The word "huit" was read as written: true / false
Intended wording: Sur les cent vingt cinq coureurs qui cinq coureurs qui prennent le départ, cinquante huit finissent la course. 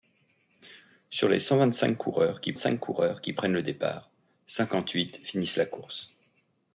true